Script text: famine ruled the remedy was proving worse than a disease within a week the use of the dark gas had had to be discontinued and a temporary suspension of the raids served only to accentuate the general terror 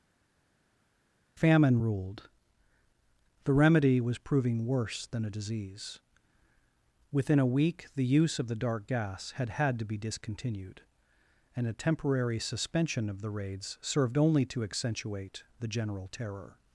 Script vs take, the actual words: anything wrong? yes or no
no